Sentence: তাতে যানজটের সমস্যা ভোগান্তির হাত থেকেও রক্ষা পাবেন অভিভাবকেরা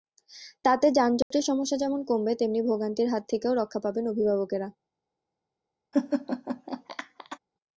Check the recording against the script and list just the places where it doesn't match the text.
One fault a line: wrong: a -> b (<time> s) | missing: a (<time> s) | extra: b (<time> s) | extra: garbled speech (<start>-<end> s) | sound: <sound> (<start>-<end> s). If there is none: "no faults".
sound: dropout (1.2-1.3 s)
extra: যেমন কমবে তেমনি (1.8 s)
sound: laugh (5.9-7.4 s)